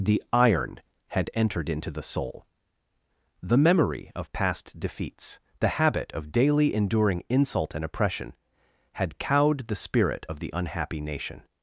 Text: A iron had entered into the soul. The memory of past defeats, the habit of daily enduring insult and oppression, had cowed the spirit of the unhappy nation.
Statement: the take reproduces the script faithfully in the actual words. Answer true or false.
false